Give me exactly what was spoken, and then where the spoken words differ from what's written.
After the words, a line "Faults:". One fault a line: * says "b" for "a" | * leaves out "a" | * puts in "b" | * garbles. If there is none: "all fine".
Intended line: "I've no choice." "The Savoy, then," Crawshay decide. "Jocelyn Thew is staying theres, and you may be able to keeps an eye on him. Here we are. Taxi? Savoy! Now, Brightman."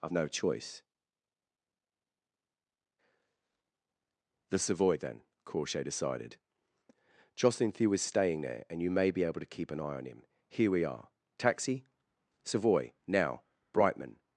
"I've no choice." "The Savoy, then," Crawshay decided. "Jocelyn Thew is staying there, and you may be able to keep an eye on him. Here we are. Taxi? Savoy! Now, Brightman."
Faults:
* says "decided" for "decide"
* says "there" for "theres"
* says "keep" for "keeps"